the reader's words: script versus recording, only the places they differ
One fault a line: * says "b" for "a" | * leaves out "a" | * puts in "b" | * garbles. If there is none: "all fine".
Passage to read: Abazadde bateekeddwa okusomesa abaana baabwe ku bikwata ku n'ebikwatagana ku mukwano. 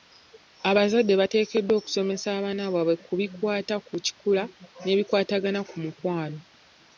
* puts in "kikula"